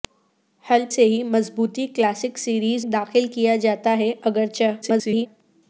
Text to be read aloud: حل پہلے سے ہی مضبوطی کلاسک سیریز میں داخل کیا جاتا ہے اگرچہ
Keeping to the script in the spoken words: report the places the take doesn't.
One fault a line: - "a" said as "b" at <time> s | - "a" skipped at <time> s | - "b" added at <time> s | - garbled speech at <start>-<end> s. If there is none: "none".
- "پہلے" skipped at 0.8 s
- "میں" skipped at 2.9 s
- garbled speech at 4.8-5.3 s